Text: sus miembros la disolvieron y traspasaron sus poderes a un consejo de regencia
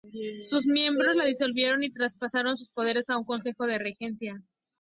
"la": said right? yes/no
yes